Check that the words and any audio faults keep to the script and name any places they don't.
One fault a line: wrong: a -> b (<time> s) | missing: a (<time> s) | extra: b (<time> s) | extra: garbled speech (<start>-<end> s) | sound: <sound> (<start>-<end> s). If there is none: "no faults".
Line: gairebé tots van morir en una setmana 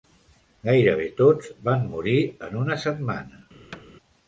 sound: thud (3.7-3.8 s)